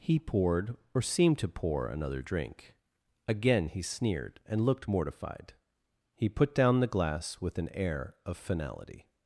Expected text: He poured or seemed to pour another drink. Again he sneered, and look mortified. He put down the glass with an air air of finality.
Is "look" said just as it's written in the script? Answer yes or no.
no